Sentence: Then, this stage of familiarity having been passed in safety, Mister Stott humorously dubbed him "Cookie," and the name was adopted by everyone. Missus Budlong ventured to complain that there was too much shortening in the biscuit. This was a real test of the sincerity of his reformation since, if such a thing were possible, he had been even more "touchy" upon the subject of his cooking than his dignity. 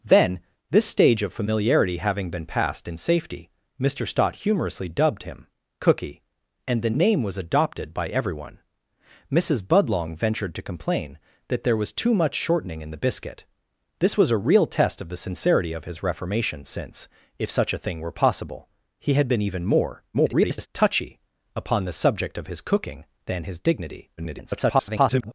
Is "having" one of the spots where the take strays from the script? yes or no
no